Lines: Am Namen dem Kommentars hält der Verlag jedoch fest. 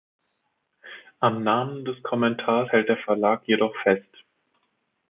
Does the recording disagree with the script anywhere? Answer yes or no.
yes